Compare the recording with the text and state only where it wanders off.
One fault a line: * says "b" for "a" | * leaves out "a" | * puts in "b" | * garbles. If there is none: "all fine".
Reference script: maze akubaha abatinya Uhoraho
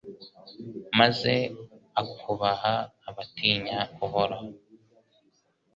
all fine